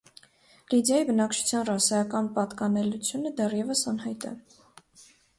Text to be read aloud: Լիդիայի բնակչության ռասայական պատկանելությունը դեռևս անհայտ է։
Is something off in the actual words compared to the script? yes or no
no